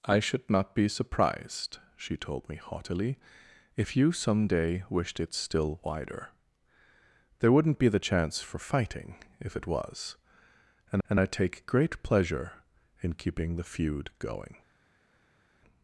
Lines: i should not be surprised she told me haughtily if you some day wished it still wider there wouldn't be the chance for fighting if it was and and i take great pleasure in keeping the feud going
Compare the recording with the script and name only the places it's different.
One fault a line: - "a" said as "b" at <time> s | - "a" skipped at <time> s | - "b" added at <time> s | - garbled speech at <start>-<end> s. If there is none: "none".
none